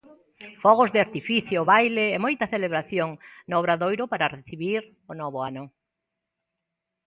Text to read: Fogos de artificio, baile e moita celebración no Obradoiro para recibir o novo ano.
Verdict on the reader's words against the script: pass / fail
pass